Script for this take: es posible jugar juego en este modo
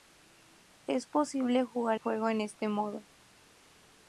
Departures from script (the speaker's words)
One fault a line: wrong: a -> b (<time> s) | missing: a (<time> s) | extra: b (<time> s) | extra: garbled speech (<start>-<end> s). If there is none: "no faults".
no faults